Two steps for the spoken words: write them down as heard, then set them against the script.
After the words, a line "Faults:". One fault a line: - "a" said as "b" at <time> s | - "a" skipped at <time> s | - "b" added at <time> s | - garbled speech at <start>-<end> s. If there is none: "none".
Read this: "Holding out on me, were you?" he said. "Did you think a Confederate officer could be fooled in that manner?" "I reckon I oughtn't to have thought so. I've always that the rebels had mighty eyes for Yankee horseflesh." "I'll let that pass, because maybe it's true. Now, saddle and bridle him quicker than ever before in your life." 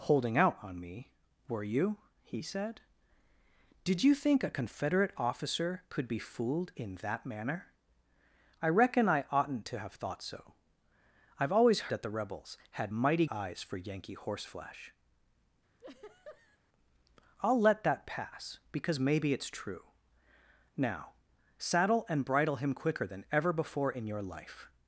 "Holding out on me, were you?" he said. "Did you think a Confederate officer could be fooled in that manner?" "I reckon I oughtn't to have thought so. I've always that the rebels had mighty eyes for Yankee horseflesh." "I'll let that pass, because maybe it's true. Now, saddle and bridle him quicker than ever before in your life."
Faults:
none